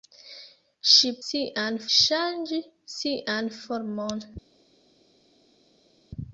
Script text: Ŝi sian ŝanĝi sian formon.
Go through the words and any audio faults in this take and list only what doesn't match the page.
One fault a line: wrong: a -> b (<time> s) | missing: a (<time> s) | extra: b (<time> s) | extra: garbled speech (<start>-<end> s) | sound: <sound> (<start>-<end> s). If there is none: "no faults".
no faults